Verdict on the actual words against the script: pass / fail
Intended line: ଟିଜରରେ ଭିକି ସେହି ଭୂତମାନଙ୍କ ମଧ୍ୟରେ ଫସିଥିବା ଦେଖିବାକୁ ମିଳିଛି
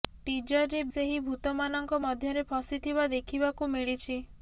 fail